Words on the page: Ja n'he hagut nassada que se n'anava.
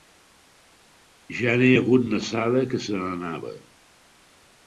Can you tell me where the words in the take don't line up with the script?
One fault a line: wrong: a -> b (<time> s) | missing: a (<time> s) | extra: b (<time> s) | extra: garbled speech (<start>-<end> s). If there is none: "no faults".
no faults